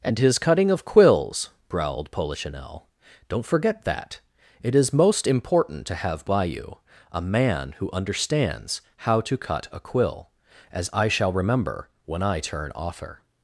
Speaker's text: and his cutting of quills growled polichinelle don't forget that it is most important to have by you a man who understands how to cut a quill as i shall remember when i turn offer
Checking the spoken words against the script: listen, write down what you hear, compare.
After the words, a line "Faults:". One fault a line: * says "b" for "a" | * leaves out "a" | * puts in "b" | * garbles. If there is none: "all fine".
and his cutting of quills growled polichinelle don't forget that it is most important to have by you a man who understands how to cut a quill as i shall remember when i turn offer
Faults:
all fine